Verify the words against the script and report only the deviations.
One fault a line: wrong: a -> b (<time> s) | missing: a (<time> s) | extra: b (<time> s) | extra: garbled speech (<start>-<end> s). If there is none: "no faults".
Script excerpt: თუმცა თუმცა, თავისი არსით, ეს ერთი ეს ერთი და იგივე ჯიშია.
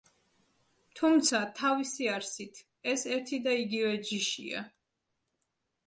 missing: თუმცა (1.4 s)
missing: ეს ერთი (3.4 s)